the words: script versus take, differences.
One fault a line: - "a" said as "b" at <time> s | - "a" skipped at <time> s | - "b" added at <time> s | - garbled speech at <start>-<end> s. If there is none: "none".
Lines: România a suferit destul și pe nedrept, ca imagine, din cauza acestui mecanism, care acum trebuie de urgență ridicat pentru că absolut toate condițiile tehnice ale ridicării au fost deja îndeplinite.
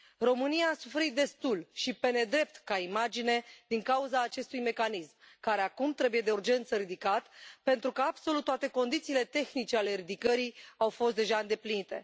none